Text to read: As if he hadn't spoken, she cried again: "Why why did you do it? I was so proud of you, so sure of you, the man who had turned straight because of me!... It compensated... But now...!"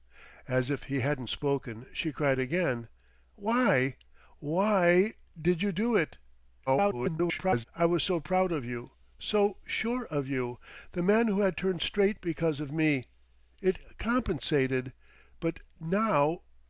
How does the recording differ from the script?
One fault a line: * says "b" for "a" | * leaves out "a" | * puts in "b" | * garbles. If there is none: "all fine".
* garbles